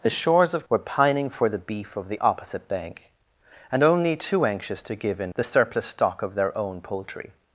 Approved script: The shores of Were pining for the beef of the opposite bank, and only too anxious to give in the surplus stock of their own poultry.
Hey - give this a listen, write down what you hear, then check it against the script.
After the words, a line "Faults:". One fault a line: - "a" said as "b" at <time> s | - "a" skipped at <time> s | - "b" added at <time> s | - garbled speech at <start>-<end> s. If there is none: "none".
The shores of Were pining for the beef of the opposite bank, and only too anxious to give in the surplus stock of their own poultry.
Faults:
none